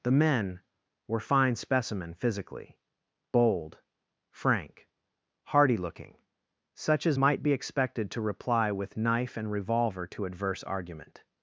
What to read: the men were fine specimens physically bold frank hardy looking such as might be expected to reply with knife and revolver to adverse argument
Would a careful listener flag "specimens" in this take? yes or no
yes